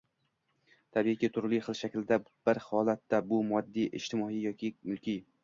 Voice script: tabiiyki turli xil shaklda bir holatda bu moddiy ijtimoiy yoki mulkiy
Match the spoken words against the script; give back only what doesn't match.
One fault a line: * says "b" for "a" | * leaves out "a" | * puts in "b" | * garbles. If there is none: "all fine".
all fine